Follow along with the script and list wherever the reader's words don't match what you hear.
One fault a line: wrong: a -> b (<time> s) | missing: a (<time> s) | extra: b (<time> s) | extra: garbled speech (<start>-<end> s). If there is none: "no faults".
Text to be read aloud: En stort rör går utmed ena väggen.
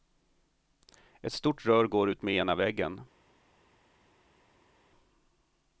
wrong: En -> Ett (1.2 s)